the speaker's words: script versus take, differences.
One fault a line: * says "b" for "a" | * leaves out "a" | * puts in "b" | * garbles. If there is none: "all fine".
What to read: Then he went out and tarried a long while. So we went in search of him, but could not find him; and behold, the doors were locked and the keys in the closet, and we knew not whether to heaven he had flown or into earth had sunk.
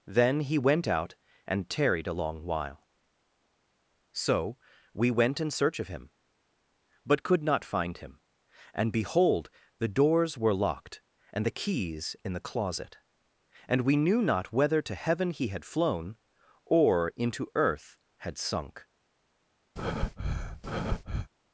all fine